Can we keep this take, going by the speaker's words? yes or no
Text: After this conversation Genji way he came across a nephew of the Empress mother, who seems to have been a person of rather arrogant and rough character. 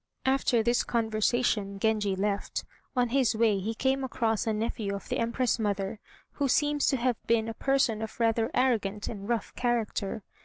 no